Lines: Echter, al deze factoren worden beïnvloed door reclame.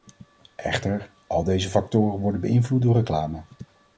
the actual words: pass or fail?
pass